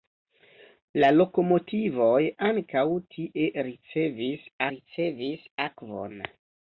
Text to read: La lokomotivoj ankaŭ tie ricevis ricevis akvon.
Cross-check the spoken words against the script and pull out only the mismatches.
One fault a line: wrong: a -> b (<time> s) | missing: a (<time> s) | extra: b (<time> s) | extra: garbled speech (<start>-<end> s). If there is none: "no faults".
no faults